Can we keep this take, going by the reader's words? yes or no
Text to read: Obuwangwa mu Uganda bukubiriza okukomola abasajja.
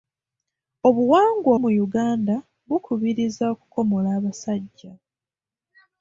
yes